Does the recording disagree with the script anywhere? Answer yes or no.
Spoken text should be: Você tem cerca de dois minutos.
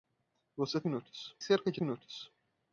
yes